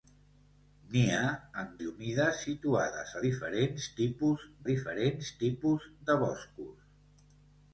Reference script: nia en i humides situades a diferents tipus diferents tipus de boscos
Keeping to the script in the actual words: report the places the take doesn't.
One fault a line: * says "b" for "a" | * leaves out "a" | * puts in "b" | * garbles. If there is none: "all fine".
all fine